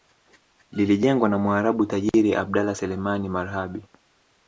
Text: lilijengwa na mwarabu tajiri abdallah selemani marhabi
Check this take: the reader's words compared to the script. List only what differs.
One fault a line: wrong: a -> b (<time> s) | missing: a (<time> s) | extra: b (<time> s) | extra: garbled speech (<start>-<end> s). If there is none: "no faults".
no faults